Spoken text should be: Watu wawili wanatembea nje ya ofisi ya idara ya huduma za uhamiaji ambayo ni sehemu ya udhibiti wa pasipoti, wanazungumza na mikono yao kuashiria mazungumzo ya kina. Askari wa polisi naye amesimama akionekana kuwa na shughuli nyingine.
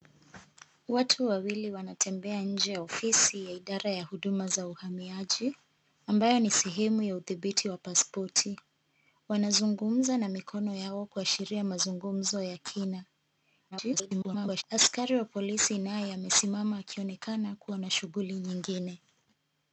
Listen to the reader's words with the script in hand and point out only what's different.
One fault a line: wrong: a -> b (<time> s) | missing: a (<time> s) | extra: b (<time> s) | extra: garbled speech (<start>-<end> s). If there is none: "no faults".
extra: garbled speech (13.7-14.6 s)